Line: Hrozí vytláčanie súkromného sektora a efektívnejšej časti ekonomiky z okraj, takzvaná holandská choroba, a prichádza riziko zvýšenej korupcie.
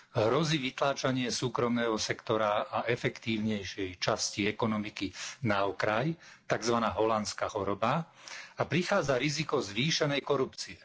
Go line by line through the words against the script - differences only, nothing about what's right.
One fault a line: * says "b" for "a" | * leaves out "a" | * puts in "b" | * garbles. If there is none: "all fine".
* says "na" for "z"